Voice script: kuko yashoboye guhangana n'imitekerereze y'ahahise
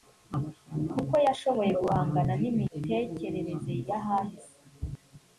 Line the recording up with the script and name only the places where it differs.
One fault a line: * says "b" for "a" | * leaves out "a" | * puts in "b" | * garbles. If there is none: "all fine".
all fine